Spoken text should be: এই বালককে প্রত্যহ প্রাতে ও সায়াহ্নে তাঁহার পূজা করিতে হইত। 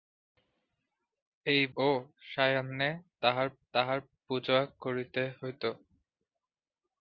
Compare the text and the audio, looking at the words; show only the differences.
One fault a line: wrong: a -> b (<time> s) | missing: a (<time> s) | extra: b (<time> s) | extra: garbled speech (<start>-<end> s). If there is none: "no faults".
missing: বালককে প্রত্যহ প্রাতে (1.6 s)
extra: তাঁহার (3.7 s)